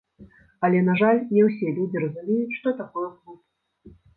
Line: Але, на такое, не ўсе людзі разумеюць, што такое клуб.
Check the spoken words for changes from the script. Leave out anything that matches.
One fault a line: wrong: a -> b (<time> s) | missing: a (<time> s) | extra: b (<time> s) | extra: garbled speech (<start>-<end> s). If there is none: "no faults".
wrong: такое -> жаль (1.0 s)